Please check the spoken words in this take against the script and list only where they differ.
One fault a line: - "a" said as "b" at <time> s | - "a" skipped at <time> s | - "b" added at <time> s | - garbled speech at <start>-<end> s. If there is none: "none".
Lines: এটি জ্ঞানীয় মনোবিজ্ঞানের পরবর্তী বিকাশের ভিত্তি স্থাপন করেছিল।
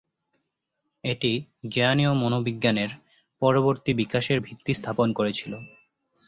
none